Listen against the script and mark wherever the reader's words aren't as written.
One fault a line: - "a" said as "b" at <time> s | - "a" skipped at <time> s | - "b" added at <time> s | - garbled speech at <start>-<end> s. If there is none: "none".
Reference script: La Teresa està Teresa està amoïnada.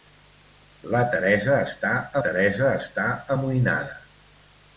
none